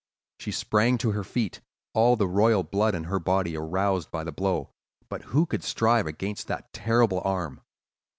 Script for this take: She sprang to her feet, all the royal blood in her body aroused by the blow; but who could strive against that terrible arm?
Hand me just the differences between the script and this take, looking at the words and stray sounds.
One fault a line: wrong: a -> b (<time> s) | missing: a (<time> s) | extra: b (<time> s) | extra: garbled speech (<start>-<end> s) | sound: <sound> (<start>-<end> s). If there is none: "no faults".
no faults